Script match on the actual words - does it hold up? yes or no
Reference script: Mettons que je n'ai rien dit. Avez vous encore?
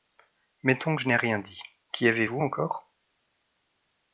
no